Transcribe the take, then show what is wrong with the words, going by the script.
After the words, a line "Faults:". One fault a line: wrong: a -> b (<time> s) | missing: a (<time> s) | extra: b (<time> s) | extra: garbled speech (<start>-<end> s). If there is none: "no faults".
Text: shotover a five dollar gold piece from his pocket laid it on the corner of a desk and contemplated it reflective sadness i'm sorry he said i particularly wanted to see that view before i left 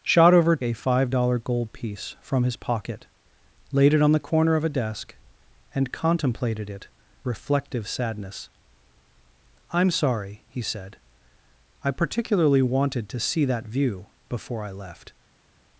shotover a five dollar gold piece from his pocket laid it on the corner of a desk and contemplated it reflective sadness i'm sorry he said i particularly wanted to see that view before i left
Faults:
no faults